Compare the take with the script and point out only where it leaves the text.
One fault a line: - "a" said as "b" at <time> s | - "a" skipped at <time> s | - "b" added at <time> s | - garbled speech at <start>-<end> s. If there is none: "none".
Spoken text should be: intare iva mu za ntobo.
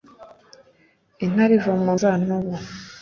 none